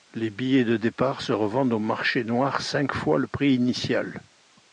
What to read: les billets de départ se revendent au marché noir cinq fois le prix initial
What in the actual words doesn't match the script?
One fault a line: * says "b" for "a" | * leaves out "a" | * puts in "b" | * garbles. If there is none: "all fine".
all fine